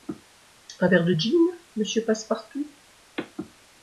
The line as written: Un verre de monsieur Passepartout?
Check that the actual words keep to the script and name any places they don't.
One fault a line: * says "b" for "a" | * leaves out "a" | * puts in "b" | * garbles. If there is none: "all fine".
* puts in "gin"